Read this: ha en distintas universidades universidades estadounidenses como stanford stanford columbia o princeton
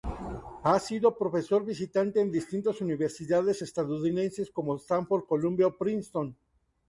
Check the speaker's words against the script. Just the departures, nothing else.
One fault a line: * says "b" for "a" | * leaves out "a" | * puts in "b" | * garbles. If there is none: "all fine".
* puts in "sido profesor visitante"
* leaves out "universidades"
* leaves out "stanford"